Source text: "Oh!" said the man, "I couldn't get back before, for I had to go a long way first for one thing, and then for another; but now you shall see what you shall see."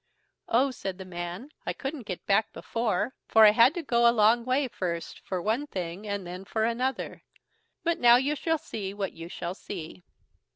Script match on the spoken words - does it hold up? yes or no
yes